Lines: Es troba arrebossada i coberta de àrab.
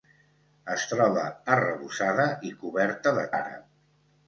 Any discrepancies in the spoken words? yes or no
no